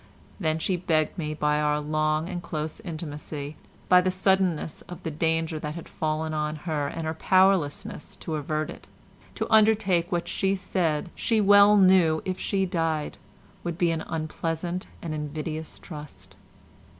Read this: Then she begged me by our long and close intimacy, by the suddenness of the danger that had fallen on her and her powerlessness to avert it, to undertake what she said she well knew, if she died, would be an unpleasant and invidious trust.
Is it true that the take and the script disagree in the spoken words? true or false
false